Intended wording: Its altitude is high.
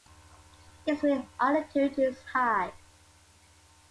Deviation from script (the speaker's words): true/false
true